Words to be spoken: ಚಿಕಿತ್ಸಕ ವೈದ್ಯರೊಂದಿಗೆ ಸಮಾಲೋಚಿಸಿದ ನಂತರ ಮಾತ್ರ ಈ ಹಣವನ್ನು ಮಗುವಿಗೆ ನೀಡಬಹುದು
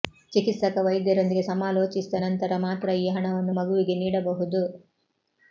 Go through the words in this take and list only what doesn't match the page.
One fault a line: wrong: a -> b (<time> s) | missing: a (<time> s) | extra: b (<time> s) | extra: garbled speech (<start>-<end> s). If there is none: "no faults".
no faults